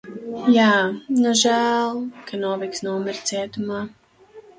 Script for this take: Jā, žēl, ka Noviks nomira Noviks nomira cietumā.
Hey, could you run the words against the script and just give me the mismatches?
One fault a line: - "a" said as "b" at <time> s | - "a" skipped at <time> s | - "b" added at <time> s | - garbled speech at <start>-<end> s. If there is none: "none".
- "nu" added at 1.2 s
- "Noviks nomira" skipped at 3.3 s